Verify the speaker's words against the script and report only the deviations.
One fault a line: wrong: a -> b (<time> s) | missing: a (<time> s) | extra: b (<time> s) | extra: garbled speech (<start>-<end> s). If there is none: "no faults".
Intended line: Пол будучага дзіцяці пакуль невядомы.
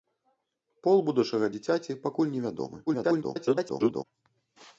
extra: garbled speech (2.9-4.0 s)